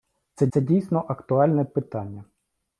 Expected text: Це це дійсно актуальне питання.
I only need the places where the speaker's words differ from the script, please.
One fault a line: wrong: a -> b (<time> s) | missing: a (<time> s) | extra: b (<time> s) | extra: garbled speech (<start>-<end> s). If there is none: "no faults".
no faults